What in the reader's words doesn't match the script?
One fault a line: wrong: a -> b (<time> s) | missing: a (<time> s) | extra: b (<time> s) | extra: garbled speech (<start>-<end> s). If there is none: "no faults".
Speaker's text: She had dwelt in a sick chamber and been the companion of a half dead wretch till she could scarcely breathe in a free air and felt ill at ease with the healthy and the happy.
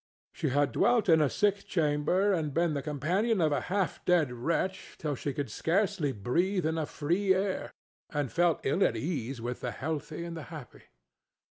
no faults